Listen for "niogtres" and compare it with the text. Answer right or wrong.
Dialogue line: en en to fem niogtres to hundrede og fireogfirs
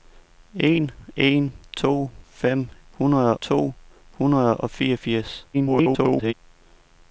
wrong